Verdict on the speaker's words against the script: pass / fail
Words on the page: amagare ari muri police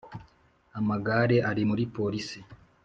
pass